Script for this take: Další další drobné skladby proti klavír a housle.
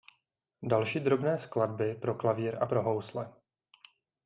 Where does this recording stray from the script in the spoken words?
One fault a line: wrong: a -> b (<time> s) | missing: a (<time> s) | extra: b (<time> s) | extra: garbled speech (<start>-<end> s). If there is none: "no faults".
missing: další (1.0 s)
wrong: proti -> pro (1.9 s)
extra: pro (2.6 s)